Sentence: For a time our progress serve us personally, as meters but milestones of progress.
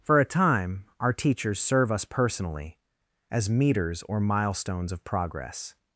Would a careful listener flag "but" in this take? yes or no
yes